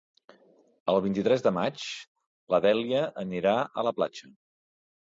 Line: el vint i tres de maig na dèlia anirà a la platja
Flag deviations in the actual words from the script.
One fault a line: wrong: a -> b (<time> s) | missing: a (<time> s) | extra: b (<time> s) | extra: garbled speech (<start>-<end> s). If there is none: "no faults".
no faults